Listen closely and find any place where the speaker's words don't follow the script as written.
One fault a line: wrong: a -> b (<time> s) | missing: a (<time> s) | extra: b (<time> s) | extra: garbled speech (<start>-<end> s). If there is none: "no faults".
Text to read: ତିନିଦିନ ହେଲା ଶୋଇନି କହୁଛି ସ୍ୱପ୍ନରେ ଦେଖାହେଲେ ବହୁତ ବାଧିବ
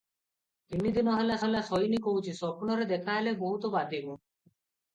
extra: ହେଲା (1.4 s)